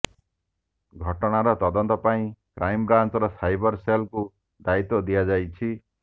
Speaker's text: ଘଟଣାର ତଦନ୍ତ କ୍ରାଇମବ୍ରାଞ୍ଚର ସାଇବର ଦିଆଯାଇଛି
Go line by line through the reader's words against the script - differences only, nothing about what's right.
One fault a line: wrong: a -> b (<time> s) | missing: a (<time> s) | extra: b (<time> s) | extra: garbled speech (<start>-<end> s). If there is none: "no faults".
extra: ପାଇଁ (2.0 s)
extra: ସେଲ୍କୁ ଦାୟିତ୍ୱ (3.8 s)